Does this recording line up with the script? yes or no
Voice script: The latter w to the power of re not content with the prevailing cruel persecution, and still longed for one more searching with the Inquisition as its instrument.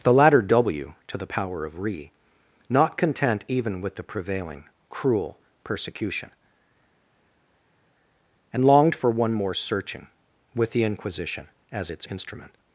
no